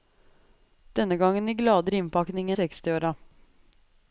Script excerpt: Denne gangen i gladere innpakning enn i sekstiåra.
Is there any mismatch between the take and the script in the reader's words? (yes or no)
yes